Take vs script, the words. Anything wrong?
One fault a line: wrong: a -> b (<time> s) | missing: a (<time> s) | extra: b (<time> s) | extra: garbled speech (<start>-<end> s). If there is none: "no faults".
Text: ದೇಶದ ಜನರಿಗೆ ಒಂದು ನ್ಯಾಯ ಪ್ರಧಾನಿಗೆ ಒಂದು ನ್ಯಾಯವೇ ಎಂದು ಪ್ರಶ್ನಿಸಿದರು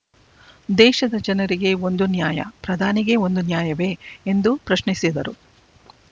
no faults